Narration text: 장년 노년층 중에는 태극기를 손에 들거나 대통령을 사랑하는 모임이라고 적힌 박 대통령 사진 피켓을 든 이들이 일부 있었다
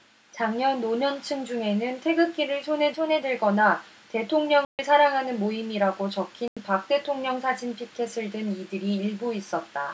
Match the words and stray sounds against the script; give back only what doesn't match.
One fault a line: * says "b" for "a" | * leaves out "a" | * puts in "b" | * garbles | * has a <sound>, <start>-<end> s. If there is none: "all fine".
* puts in "손에"
* has a dropout, 4.6-4.8 s
* has a dropout, 6.5-6.6 s